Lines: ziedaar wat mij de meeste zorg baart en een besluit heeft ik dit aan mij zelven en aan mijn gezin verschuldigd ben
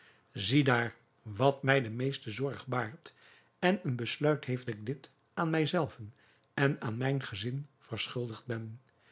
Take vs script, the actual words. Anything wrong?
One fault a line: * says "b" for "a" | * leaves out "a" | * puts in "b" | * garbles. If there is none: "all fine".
all fine